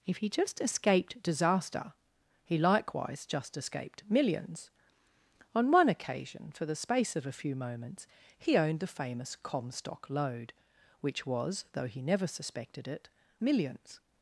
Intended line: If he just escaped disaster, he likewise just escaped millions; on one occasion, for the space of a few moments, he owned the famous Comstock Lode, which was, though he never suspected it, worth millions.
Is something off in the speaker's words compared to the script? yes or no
yes